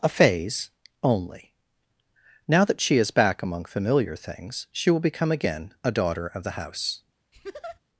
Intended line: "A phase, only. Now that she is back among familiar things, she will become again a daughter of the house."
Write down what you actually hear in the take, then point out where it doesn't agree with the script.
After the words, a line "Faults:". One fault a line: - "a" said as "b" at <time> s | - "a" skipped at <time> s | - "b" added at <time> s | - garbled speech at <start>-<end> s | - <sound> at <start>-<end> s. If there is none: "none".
"A phase, only. Now that she is back among familiar things, she will become again a daughter of the house."
Faults:
- laugh at 7.3-7.8 s